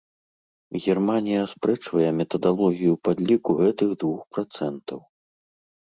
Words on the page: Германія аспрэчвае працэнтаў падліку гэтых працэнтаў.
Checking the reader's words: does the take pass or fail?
fail